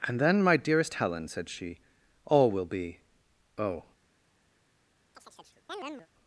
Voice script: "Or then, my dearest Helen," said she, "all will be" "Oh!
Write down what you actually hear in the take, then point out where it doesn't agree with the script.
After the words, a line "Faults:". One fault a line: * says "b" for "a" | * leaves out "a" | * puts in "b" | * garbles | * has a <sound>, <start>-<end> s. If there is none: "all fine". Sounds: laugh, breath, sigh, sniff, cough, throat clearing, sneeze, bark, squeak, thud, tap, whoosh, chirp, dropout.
"And then, my dearest Helen," said she, "all will be" "Oh!
Faults:
* says "And" for "Or"
* has a chirp, 5.1-6.1 s